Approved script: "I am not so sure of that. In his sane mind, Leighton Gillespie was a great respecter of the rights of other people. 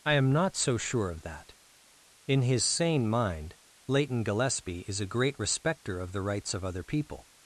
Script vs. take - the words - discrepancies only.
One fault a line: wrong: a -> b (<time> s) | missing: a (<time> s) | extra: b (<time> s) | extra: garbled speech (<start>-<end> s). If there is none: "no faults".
wrong: was -> is (4.9 s)